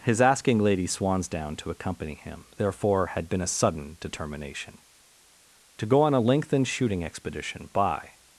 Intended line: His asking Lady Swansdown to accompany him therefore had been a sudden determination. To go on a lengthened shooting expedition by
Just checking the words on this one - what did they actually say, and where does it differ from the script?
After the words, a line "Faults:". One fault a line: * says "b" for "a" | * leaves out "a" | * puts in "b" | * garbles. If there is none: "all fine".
His asking Lady Swansdown to accompany him therefore had been a sudden determination. To go on a lengthened shooting expedition by
Faults:
all fine